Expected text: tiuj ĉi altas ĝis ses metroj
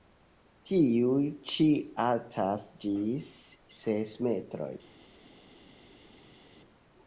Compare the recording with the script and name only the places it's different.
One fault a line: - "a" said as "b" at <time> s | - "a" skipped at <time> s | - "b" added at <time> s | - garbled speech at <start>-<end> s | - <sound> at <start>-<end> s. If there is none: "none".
none